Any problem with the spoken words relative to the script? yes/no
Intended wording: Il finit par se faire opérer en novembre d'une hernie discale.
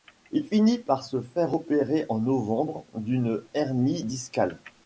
no